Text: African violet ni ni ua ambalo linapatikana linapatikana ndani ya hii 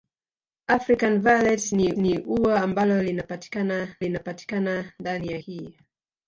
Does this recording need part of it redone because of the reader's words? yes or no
no